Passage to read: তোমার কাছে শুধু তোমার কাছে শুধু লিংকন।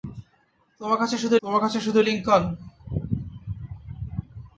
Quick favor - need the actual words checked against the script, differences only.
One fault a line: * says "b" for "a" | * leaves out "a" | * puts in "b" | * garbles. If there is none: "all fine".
all fine